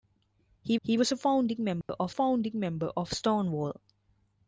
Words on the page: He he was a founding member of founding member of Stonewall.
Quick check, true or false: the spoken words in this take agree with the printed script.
true